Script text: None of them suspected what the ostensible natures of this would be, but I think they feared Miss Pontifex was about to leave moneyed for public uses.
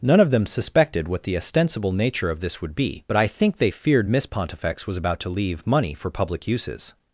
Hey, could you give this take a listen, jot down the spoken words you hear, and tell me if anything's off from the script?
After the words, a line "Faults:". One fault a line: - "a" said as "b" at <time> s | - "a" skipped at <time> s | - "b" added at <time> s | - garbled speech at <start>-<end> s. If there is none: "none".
None of them suspected what the ostensible nature of this would be, but I think they feared Miss Pontifex was about to leave money for public uses.
Faults:
- "natures" said as "nature" at 1.9 s
- "moneyed" said as "money" at 5.7 s